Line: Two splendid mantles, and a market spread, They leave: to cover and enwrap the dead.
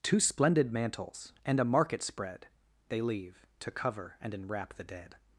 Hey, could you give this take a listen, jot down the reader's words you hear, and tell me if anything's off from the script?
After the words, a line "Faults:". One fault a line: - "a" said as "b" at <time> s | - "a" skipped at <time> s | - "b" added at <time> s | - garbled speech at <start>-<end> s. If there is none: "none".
Two splendid mantles, and a market spread, They leave: to cover and enwrap the dead.
Faults:
none